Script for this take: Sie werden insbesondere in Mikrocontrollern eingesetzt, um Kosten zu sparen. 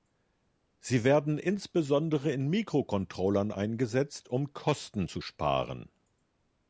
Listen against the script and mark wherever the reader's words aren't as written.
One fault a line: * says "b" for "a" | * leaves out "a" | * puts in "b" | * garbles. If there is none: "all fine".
all fine